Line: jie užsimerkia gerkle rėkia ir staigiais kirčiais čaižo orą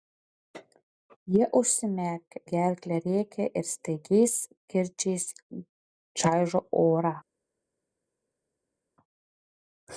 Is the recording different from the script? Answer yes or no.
no